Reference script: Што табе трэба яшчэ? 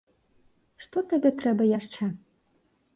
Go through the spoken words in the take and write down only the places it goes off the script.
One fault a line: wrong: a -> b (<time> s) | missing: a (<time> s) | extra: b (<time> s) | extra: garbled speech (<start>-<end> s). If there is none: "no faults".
no faults